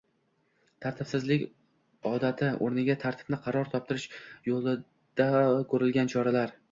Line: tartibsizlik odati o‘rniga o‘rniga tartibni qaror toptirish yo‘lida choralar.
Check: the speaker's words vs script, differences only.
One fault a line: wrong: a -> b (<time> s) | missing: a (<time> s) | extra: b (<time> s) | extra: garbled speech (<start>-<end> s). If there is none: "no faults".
missing: o‘rniga (3.0 s)
extra: ko‘rilgan (5.7 s)